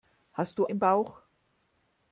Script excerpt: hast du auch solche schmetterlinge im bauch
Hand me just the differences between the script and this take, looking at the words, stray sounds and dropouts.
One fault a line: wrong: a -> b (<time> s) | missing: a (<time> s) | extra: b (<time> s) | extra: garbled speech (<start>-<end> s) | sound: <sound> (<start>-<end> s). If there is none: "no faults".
missing: auch solche schmetterlinge (0.7 s)